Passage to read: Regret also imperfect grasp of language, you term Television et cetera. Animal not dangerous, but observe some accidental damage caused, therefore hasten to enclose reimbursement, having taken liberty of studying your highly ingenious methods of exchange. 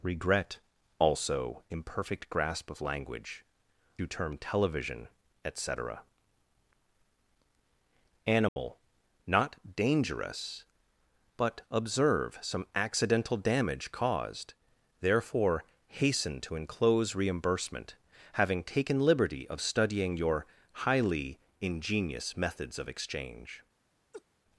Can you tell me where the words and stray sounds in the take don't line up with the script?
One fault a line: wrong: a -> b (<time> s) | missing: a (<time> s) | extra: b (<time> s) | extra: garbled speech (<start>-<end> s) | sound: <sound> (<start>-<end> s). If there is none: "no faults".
sound: dropout (8.5-8.6 s)
sound: laugh (24.1-24.2 s)